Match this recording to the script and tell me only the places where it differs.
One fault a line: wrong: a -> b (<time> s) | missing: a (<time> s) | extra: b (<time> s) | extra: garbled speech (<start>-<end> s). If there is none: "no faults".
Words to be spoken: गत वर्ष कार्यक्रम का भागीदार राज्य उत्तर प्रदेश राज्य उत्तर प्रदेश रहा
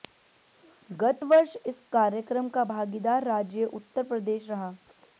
extra: इस (1.7 s)
missing: राज्य उत्तर प्रदेश (4.5 s)